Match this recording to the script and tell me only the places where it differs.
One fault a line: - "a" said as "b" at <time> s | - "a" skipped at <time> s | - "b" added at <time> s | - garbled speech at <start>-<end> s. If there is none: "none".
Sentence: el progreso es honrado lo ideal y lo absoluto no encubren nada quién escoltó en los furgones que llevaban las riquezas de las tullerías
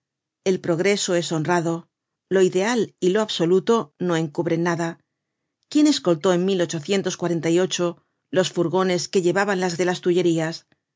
- "riquezas" skipped at 9.8 s